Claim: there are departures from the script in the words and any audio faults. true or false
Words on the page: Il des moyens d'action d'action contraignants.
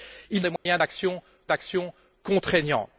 true